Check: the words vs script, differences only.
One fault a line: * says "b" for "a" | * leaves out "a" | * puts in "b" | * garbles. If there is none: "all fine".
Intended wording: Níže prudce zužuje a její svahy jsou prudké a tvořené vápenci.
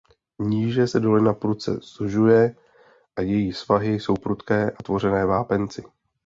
* puts in "se dolina"